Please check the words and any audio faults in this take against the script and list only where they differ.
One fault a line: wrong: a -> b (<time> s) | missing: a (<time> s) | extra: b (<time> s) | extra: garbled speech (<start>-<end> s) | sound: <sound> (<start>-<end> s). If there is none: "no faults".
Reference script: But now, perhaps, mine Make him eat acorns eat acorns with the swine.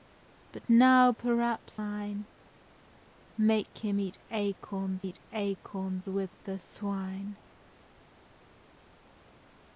no faults